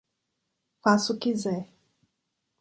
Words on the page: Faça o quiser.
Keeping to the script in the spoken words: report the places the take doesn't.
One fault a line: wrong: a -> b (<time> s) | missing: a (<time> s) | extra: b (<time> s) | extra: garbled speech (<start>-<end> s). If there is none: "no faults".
no faults